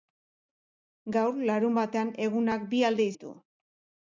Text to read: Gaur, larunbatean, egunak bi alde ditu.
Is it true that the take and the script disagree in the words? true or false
false